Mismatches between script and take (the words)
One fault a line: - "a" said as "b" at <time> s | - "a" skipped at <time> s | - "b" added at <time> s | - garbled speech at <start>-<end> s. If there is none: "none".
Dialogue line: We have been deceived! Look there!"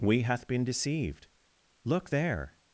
- "have" said as "hath" at 0.2 s